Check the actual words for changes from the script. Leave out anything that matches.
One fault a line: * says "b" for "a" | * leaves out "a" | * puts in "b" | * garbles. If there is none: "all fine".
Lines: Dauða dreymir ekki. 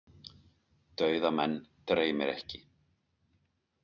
* puts in "menn"